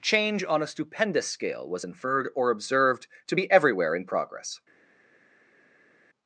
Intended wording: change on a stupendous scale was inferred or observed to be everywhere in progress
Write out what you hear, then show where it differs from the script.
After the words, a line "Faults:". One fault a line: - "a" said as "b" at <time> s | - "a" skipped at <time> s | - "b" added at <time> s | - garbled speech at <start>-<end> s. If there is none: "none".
change on a stupendous scale was inferred or observed to be everywhere in progress
Faults:
none